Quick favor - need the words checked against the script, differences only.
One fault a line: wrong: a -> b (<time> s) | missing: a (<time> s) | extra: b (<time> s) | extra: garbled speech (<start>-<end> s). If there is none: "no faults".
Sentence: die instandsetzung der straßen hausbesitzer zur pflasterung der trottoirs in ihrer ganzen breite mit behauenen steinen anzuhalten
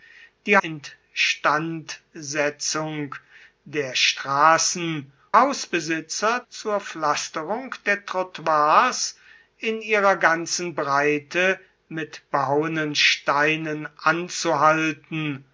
no faults